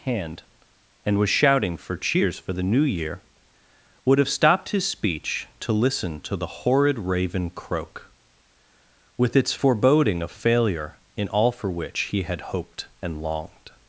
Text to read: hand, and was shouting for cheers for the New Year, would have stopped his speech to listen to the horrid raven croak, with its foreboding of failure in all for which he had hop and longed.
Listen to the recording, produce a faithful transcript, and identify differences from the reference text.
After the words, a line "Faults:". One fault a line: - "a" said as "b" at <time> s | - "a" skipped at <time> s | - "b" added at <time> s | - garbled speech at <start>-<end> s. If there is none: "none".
hand, and was shouting for cheers for the New Year, would have stopped his speech to listen to the horrid raven croak, with its foreboding of failure in all for which he had hoped and longed.
Faults:
- "hop" said as "hoped" at 12.6 s